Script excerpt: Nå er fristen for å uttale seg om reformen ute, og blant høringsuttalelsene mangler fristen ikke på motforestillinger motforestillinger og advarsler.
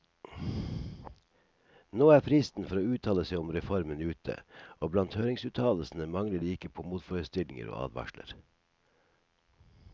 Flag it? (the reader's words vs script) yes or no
yes